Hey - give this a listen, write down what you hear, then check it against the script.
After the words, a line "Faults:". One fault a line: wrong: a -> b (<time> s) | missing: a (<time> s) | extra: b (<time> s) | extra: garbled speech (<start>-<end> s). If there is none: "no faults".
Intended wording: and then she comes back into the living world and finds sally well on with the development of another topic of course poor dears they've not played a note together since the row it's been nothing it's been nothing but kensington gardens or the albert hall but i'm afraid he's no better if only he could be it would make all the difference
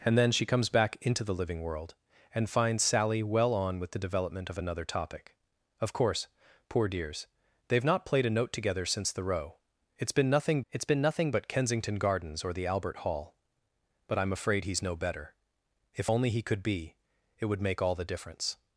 and then she comes back into the living world and finds sally well on with the development of another topic of course poor dears they've not played a note together since the row it's been nothing it's been nothing but kensington gardens or the albert hall but i'm afraid he's no better if only he could be it would make all the difference
Faults:
no faults